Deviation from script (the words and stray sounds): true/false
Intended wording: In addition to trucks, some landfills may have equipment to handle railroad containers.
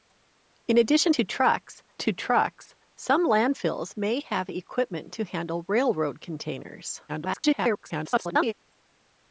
true